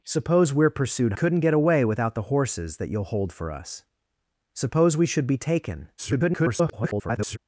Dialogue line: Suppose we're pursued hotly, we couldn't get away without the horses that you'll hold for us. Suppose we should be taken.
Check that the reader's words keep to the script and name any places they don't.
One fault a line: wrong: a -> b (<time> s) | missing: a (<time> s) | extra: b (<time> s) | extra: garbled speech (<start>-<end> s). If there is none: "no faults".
missing: hotly we (1.1 s)
extra: garbled speech (6.0-7.4 s)